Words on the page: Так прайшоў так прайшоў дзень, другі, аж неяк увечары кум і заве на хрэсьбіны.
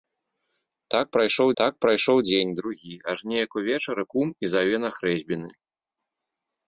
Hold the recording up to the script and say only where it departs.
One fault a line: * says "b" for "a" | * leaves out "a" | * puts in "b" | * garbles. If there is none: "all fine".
all fine